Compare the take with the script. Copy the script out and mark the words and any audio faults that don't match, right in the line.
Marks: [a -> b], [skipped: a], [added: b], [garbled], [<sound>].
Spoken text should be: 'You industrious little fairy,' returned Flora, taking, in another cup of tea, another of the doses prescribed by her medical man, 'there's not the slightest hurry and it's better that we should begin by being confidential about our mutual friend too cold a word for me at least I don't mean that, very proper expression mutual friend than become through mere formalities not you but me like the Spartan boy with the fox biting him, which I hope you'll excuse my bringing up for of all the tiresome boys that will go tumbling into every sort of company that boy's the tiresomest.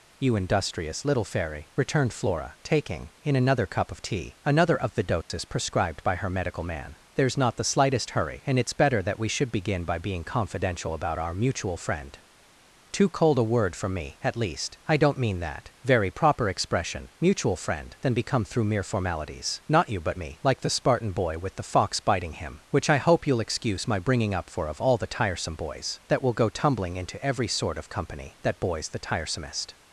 'You industrious little fairy,' returned Flora, taking, in another cup of tea, another of the doses [dropout] prescribed by her medical man, 'there's not the slightest hurry and it's better that we should begin by being confidential about our mutual friend too cold a word for me at least I don't mean that, very proper expression mutual friend than become through mere formalities not you but me like the Spartan boy with the fox biting him, which I hope you'll excuse my bringing up for of all the tiresome boys that will go tumbling into every sort of company that boy's the tiresomest.